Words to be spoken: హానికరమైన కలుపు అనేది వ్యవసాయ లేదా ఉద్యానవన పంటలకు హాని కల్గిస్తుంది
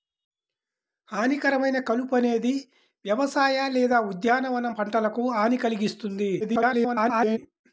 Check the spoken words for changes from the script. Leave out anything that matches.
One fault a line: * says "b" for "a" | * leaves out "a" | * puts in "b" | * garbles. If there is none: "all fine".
* garbles